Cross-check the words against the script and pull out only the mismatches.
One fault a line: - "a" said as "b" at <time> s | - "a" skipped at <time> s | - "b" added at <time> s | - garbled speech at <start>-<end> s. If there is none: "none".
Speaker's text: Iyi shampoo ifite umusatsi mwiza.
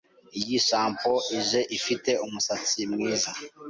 - "ije" added at 1.4 s